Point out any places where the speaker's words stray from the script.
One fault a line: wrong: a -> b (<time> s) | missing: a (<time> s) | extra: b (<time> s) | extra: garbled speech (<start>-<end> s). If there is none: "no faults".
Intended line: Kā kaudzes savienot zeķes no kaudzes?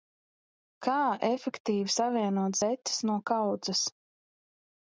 wrong: kaudzes -> efektīvi (1.3 s)